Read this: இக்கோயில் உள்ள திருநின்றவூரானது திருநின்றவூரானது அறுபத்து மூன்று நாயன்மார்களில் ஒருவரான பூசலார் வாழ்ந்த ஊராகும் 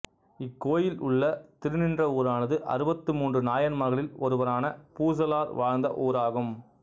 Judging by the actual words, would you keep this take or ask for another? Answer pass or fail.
fail